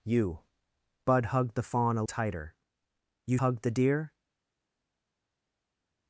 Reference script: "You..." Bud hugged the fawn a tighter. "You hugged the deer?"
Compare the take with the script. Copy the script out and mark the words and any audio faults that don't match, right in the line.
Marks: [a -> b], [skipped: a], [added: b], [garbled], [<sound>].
"You..." Bud hugged the fawn a tighter. "You hugged the deer?"